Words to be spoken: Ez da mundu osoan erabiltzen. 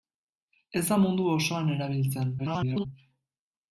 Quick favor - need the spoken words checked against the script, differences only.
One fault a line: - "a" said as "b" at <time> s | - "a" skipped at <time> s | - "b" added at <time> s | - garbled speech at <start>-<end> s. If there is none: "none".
- garbled speech at 2.4-2.9 s